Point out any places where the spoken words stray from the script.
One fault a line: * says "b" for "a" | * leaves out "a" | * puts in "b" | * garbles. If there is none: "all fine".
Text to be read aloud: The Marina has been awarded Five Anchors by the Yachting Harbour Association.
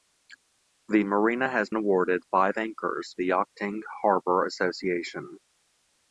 * leaves out "been"
* leaves out "by"